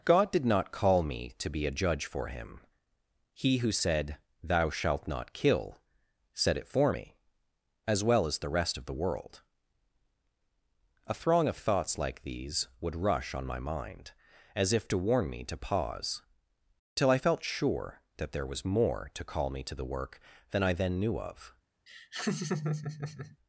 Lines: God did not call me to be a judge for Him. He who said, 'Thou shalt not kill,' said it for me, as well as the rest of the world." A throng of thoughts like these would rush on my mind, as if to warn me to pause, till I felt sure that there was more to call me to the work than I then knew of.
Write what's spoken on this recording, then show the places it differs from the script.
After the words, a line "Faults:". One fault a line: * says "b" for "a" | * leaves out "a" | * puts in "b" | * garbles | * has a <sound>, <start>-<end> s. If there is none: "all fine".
God did not call me to be a judge for Him. He who said, 'Thou shalt not kill,' said it for me, as well as the rest of the world." A throng of thoughts like these would rush on my mind, as if to warn me to pause, till I felt sure that there was more to call me to the work than I then knew of.
Faults:
* has a laugh, 21.9-23.4 s